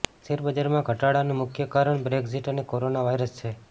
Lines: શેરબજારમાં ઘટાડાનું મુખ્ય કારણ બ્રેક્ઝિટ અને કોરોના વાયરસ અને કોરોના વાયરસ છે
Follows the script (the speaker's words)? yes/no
no